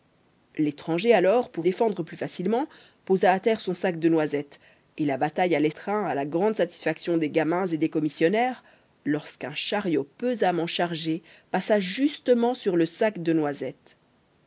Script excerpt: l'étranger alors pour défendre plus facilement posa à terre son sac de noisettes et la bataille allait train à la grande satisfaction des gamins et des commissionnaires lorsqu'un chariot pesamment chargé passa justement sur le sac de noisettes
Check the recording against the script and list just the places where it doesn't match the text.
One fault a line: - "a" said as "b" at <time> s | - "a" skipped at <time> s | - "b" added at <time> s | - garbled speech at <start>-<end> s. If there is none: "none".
none